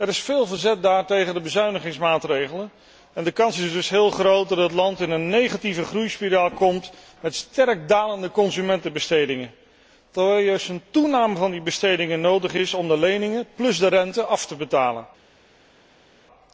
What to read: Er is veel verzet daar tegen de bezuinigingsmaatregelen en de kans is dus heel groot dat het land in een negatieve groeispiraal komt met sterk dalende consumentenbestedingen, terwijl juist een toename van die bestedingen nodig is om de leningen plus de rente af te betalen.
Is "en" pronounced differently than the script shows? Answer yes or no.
no